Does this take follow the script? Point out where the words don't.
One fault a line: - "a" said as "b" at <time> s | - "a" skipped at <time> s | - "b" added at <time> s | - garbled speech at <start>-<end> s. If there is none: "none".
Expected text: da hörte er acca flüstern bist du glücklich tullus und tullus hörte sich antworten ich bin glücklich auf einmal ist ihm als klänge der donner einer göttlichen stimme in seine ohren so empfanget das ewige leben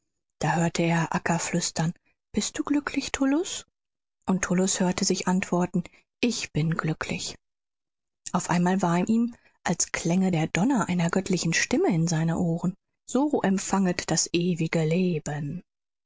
- "ist" said as "war" at 8.8 s